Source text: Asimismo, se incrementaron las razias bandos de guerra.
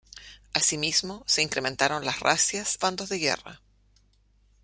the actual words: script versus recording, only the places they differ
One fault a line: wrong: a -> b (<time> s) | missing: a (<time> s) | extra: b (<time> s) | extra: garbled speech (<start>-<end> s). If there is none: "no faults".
no faults